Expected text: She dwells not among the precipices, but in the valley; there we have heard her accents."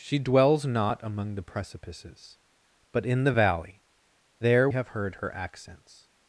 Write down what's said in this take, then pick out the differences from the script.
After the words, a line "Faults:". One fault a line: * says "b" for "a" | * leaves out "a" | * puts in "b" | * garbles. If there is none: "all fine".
She dwells not among the precipices, but in the valley; there have heard her accents."
Faults:
* leaves out "we"